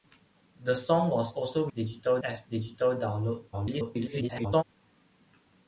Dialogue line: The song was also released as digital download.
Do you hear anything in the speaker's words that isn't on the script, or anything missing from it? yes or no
yes